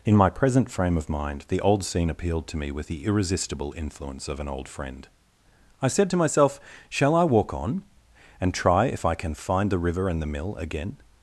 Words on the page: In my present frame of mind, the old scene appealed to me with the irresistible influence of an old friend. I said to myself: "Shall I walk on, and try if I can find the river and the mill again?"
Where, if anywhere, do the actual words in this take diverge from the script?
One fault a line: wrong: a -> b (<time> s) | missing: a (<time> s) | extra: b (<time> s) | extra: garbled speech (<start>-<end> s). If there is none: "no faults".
no faults